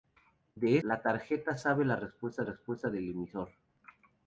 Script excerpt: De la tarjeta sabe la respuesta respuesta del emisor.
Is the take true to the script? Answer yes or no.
yes